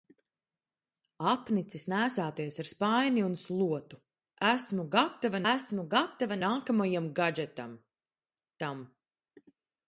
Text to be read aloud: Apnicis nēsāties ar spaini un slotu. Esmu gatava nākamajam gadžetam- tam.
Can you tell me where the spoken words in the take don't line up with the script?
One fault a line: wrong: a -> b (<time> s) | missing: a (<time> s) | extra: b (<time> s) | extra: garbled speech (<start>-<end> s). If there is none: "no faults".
extra: esmu gatava (5.5 s)